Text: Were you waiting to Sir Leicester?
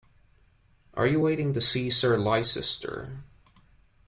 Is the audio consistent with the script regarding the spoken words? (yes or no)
no